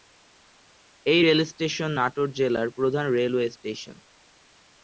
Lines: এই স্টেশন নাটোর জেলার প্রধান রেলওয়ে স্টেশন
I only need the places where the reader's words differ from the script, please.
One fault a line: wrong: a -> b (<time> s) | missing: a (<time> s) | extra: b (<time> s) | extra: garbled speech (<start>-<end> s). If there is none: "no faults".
extra: রেল (1.2 s)